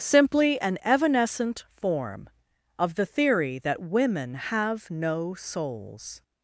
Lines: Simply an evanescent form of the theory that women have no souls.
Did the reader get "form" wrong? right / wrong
right